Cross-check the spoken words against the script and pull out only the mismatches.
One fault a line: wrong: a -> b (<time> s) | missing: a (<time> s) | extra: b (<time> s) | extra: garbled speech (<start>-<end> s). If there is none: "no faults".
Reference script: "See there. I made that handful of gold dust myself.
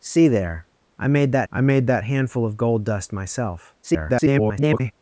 extra: I made that (1.5 s)
extra: garbled speech (3.8-4.9 s)